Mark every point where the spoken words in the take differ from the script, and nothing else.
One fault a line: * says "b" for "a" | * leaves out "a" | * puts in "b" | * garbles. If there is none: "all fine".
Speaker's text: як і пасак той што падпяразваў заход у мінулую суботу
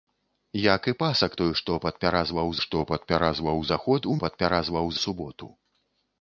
* puts in "што падпяразваў"
* says "падпяразваў" for "мінулую"